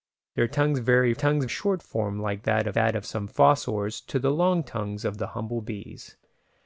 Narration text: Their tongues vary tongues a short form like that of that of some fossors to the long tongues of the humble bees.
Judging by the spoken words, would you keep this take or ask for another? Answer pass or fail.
pass